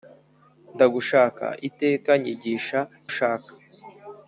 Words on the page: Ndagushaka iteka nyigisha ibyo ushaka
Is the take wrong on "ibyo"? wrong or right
wrong